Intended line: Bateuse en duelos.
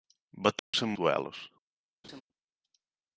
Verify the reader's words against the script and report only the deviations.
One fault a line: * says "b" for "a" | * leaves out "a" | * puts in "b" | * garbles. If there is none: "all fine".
all fine